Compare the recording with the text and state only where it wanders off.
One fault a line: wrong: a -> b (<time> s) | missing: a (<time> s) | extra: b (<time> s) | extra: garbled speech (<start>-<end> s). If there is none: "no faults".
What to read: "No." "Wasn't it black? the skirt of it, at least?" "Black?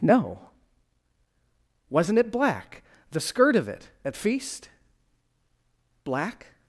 wrong: least -> feast (4.2 s)